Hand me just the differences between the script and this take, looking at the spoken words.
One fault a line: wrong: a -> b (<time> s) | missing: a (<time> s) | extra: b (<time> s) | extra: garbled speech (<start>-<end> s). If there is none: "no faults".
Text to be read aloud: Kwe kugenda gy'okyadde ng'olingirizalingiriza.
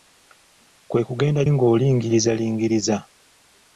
missing: gy'okyadde (1.4 s)